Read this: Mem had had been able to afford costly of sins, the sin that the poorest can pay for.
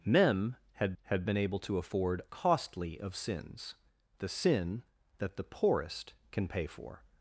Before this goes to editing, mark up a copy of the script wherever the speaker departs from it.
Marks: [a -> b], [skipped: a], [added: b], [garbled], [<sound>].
Mem had had been able to afford costly of sins, the sin that the poorest can pay for.